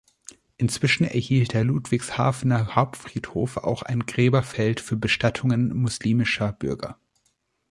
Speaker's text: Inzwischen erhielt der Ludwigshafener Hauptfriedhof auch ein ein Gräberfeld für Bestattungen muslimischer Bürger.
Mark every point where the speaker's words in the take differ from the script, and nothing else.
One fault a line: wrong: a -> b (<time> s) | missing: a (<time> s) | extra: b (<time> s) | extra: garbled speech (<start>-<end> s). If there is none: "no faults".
missing: ein (4.1 s)